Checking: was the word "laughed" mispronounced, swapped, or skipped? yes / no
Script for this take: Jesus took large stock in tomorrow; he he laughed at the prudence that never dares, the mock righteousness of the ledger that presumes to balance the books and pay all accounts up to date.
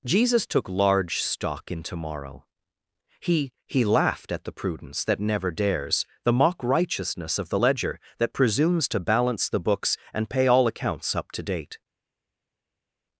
no